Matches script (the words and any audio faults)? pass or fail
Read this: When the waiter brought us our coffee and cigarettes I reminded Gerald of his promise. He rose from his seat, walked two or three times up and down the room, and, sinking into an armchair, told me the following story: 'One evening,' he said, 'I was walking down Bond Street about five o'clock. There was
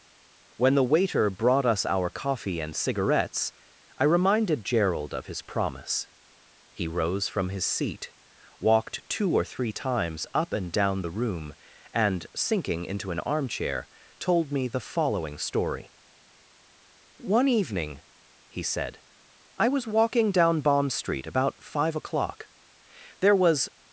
pass